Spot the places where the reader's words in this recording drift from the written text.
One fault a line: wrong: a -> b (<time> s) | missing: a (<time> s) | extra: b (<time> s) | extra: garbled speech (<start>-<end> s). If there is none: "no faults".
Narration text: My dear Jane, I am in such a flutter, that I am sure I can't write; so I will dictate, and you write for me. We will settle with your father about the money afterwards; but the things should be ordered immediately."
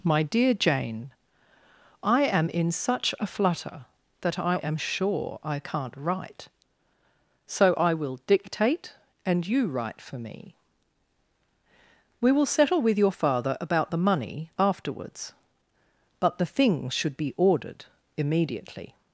no faults